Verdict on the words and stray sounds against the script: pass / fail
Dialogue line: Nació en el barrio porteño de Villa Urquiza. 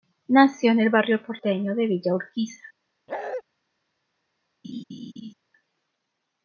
fail